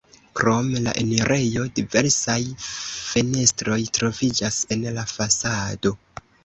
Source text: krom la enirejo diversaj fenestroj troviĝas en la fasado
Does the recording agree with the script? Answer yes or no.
yes